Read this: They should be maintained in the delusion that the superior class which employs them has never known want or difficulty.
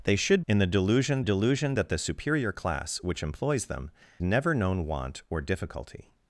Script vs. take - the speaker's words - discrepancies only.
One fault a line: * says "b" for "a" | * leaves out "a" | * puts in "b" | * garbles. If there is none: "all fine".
* leaves out "be maintained"
* puts in "delusion"
* leaves out "has"